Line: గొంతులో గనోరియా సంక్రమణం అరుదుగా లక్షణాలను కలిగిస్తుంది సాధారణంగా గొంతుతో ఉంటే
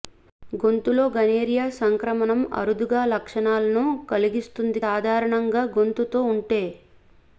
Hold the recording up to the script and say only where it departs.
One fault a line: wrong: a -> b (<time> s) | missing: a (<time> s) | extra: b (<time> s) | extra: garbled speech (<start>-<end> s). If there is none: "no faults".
no faults